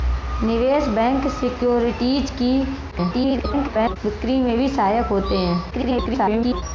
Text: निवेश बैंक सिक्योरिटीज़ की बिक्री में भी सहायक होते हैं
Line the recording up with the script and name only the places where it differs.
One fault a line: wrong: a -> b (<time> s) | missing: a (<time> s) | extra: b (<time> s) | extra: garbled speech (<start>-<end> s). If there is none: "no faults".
extra: garbled speech (2.9-4.0 s)
extra: garbled speech (5.7-6.6 s)